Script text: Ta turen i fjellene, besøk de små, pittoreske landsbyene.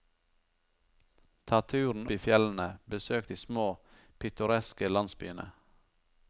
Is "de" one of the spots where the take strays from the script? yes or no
no